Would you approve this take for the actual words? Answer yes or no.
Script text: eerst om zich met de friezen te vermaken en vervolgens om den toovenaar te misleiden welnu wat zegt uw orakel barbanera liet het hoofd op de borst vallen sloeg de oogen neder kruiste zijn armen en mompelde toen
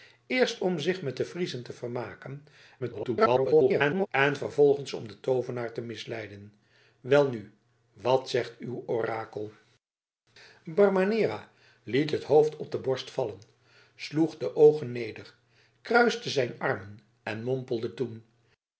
no